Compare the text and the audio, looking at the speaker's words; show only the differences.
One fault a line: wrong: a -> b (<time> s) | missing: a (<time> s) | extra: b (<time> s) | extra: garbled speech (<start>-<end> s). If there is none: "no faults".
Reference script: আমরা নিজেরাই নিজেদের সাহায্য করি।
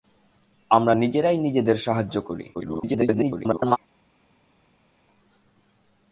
extra: garbled speech (2.5-3.8 s)